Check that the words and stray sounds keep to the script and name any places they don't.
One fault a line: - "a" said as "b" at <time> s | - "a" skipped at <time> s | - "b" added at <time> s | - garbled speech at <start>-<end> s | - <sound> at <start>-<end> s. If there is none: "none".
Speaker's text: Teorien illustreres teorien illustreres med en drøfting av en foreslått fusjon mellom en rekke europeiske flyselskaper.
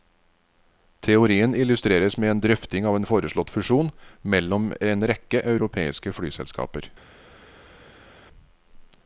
- "teorien illustreres" skipped at 2.2 s